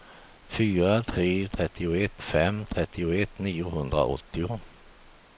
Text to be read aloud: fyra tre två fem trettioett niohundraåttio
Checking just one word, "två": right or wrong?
wrong